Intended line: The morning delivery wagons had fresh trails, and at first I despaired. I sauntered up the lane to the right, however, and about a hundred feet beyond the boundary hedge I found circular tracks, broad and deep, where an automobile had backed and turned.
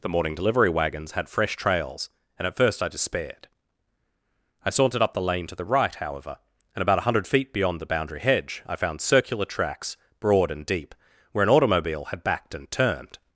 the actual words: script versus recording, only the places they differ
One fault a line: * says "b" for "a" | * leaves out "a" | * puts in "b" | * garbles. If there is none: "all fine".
all fine